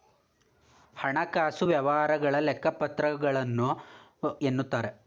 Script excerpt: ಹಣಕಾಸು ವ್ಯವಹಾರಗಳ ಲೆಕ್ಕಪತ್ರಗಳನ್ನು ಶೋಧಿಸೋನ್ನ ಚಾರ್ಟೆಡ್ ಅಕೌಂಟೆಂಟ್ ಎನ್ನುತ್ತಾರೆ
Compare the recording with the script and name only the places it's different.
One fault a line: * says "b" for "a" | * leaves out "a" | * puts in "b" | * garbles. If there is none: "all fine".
* leaves out "ಶೋಧಿಸೋನ್ನ ಚಾರ್ಟೆಡ್ ಅಕೌಂಟೆಂಟ್"